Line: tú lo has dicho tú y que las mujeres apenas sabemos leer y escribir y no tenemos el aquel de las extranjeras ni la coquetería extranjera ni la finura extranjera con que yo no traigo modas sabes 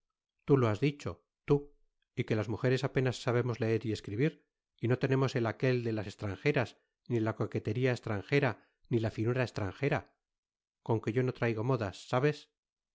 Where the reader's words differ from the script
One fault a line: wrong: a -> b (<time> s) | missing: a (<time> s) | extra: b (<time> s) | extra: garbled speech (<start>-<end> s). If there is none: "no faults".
no faults